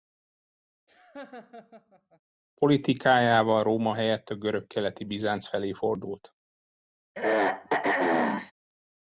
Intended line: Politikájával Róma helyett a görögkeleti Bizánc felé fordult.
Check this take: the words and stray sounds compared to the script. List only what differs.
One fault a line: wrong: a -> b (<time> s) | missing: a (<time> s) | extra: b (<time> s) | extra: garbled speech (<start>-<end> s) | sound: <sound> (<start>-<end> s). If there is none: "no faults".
sound: laugh (0.9-2.2 s)
sound: throat clearing (7.1-8.5 s)